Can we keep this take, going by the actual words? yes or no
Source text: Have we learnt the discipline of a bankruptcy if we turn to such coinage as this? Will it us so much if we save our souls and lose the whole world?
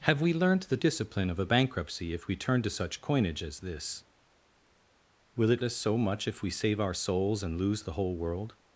yes